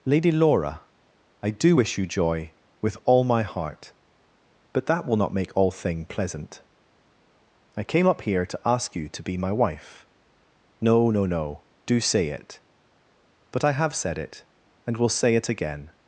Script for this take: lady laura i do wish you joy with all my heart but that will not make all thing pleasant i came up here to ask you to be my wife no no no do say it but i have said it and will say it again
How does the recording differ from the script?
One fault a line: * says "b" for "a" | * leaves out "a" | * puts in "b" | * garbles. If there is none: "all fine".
all fine